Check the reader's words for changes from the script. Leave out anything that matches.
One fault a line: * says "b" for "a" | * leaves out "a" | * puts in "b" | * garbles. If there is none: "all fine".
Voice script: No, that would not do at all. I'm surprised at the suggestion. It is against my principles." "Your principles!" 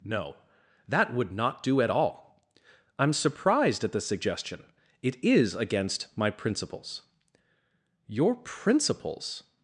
all fine